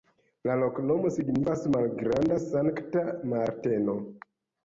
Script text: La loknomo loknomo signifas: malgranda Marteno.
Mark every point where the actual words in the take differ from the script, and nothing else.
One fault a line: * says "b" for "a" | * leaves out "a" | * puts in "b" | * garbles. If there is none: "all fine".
* leaves out "loknomo"
* puts in "Sankta"